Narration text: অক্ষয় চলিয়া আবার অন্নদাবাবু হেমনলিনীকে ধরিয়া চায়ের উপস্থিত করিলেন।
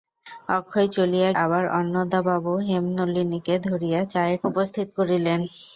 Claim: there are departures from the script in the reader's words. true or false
false